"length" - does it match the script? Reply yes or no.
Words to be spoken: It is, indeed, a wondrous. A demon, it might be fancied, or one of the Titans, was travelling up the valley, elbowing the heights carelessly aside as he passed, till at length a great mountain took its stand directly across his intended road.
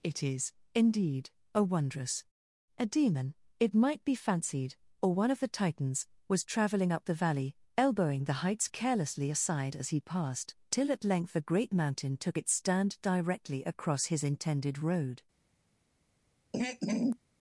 yes